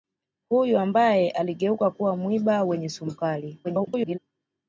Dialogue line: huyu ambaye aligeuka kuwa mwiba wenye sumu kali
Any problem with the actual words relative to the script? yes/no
yes